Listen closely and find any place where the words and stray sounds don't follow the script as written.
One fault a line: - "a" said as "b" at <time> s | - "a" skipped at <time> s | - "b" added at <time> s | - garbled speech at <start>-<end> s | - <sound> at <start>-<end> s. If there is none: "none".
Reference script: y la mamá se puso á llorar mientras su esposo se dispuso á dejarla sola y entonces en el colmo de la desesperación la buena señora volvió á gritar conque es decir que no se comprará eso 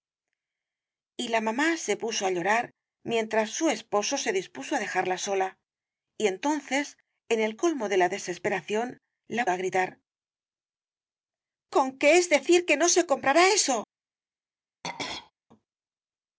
- "buena señora volvió" skipped at 9.4 s
- throat clearing at 14.8-15.3 s